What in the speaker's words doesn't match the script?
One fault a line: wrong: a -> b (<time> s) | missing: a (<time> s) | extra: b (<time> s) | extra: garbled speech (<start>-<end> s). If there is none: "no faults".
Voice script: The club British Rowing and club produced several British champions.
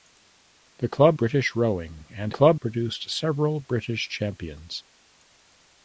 no faults